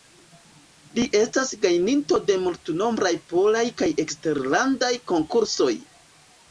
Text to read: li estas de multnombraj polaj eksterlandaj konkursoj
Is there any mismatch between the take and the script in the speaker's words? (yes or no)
yes